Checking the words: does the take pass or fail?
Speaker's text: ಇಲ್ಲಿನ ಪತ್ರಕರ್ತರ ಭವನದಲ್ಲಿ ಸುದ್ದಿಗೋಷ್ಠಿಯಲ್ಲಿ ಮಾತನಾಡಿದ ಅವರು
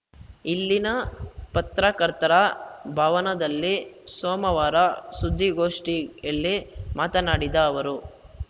fail